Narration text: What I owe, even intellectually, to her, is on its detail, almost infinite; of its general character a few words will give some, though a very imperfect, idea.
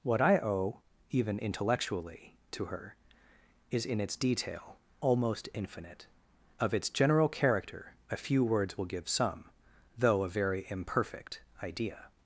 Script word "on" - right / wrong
wrong